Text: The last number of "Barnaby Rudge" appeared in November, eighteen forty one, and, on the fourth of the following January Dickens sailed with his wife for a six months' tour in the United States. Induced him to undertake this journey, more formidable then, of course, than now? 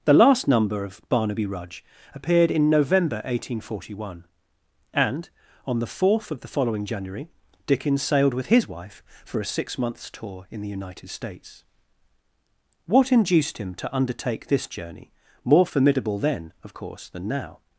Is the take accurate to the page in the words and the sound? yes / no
no